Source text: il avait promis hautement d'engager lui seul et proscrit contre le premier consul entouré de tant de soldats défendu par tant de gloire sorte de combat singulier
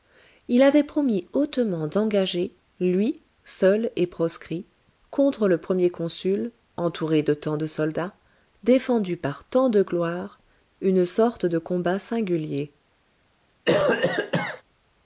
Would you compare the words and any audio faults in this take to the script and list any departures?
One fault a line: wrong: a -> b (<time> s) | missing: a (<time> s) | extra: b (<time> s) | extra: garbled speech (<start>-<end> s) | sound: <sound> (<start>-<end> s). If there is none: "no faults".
extra: une (10.8 s)
sound: cough (13.7-14.6 s)